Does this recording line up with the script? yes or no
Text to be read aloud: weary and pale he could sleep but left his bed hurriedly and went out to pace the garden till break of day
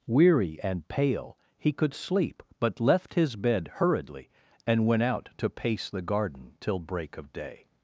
yes